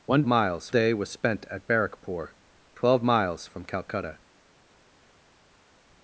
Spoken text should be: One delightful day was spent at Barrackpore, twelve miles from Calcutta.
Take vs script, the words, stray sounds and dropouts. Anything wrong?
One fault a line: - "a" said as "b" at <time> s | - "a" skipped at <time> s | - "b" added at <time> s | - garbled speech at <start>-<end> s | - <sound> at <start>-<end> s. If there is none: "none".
- "delightful" said as "miles" at 0.3 s